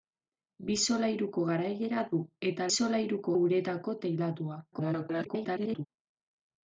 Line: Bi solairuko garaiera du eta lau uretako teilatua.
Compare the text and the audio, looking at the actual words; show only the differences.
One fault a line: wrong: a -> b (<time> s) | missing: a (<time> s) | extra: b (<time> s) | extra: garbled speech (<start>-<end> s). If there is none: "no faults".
wrong: lau -> solairuko (2.8 s)
extra: garbled speech (4.7-5.9 s)